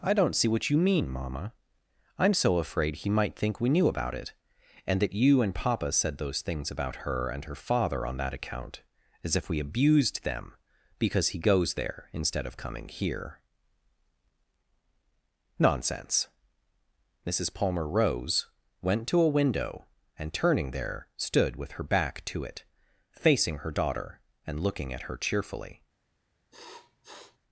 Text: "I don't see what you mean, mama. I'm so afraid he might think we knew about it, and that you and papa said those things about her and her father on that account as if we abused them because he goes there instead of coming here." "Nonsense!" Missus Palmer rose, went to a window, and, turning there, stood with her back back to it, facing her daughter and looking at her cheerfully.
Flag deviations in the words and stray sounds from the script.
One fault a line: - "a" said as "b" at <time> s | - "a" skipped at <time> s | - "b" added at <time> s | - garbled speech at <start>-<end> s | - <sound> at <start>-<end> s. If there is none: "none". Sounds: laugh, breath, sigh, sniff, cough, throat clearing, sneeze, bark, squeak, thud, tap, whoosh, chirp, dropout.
- "back" skipped at 22.2 s
- sniff at 26.5-27.4 s